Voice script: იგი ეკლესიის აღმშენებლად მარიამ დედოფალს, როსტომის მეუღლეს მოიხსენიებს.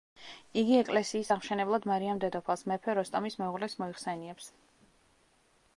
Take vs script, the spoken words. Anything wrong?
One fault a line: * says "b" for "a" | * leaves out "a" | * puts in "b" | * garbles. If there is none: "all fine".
* puts in "მეფე"